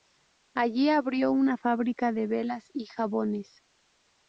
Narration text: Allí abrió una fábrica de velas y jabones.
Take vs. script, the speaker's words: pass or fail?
pass